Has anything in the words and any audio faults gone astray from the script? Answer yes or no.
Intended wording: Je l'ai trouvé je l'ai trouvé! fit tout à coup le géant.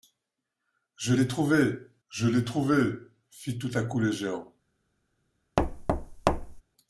yes